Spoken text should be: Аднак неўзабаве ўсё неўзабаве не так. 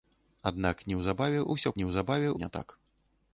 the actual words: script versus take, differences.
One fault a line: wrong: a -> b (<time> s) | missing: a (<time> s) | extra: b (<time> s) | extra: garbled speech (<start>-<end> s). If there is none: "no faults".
no faults